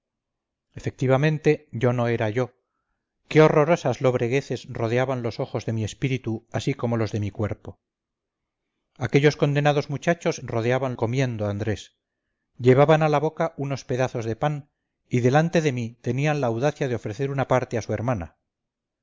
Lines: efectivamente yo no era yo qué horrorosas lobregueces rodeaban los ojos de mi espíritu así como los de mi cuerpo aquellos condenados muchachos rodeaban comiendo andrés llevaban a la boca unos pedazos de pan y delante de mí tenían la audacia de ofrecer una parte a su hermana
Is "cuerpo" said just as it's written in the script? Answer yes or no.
yes